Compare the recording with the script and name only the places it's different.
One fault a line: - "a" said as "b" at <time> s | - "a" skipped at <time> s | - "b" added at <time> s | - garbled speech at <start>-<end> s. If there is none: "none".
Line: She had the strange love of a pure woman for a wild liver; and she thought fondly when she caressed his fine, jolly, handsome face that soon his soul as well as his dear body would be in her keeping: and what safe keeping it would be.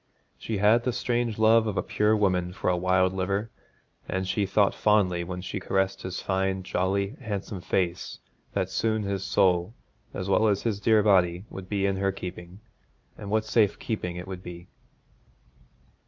none